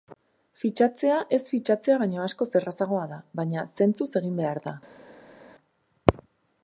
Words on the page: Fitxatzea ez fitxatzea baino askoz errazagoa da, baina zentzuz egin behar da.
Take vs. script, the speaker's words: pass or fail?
pass